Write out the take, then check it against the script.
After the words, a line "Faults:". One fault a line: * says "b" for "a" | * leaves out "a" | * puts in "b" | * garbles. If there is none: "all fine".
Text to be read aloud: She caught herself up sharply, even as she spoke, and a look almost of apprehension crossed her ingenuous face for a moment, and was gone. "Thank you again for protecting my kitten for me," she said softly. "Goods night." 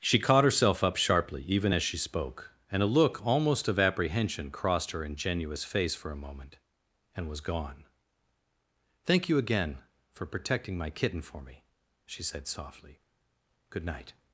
She caught herself up sharply, even as she spoke, and a look almost of apprehension crossed her ingenuous face for a moment, and was gone. "Thank you again for protecting my kitten for me," she said softly. "Good night."
Faults:
* says "Good" for "Goods"